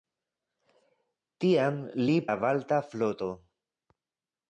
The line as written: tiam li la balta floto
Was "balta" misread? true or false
false